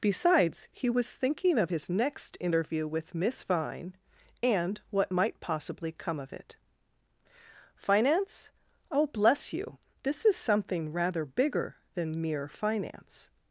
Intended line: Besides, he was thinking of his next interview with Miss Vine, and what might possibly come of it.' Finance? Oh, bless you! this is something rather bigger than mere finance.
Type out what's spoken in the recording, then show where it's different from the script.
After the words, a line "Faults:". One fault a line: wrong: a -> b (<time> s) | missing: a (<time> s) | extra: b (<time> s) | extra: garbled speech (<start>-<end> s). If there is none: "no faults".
Besides, he was thinking of his next interview with Miss Vine, and what might possibly come of it.' Finance? Oh, bless you! this is something rather bigger than mere finance.
Faults:
no faults